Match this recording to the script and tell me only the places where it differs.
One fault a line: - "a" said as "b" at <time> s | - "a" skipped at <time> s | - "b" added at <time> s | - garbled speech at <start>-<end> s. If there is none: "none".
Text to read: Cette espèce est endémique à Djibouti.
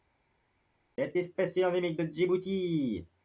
- "à" said as "de" at 2.0 s